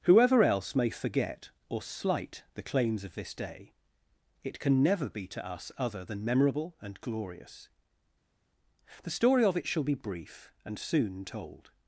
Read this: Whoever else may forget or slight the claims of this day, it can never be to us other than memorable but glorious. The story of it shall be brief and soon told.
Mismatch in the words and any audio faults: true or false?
true